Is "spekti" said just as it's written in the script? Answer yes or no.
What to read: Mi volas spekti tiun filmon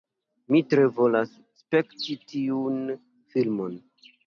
yes